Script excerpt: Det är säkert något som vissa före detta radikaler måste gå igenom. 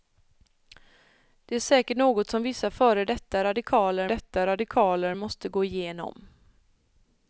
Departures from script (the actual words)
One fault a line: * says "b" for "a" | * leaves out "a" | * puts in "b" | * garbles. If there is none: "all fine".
* puts in "detta radikaler"